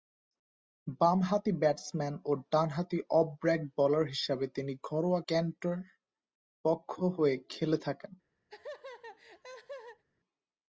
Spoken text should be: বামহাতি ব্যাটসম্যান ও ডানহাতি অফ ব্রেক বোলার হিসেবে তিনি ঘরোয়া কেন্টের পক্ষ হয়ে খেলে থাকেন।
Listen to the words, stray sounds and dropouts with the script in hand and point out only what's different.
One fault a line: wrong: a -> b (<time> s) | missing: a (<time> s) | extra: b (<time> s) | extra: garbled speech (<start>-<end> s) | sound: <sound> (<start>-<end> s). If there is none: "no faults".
sound: laugh (8.5-10.0 s)